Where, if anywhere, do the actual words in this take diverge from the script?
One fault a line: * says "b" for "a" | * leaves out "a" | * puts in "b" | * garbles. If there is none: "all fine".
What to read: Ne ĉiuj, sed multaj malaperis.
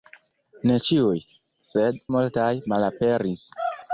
all fine